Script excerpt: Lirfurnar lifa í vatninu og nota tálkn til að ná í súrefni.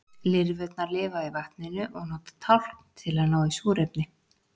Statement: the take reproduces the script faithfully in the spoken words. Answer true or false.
true